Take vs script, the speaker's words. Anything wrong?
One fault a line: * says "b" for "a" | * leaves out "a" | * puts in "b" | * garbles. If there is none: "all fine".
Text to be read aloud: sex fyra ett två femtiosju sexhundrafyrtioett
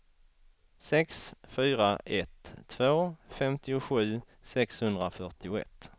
all fine